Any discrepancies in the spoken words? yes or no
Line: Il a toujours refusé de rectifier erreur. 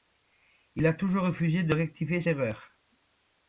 no